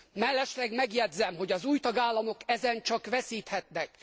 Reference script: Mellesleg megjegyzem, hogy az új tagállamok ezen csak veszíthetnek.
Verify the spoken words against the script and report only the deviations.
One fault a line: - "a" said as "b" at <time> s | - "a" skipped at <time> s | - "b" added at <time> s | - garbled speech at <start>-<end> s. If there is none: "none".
none